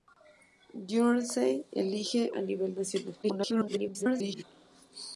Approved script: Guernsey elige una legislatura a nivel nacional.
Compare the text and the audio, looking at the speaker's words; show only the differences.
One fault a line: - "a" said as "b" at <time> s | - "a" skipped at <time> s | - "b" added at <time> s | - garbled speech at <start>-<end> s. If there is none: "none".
- "una legislatura" skipped at 2.3 s
- garbled speech at 3.2-4.4 s